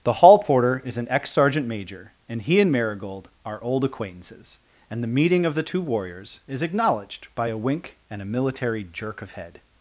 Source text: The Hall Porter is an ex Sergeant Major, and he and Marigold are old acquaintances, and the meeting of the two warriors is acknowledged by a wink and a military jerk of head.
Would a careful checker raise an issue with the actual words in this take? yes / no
no